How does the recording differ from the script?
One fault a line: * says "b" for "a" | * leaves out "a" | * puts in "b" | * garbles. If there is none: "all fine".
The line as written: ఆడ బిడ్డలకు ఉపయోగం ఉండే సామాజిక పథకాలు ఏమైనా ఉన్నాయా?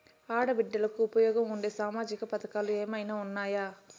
all fine